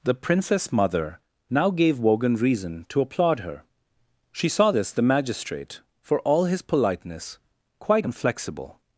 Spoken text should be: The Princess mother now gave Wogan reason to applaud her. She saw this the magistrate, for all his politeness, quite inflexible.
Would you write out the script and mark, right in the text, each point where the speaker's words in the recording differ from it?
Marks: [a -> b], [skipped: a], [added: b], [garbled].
The Princess mother now gave Wogan reason to applaud her. She saw this the magistrate, for all his politeness, quite inflexible.